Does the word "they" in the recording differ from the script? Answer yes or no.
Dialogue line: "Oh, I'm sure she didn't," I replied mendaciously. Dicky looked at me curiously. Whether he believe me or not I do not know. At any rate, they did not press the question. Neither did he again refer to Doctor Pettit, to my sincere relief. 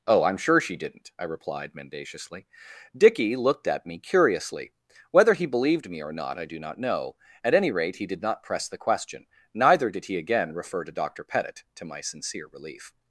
yes